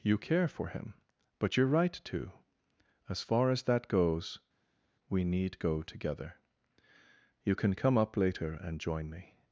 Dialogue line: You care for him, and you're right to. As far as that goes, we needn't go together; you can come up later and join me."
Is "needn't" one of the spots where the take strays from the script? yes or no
yes